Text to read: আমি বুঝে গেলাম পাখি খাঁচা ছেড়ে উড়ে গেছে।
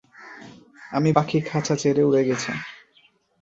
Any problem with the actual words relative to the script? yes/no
yes